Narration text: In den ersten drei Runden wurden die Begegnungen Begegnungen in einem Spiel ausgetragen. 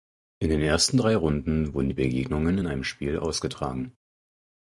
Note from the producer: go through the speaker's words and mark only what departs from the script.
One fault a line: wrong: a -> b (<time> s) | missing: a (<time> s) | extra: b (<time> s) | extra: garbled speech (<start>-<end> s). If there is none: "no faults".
missing: Begegnungen (2.6 s)